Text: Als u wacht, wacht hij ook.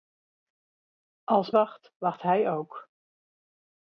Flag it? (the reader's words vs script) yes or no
yes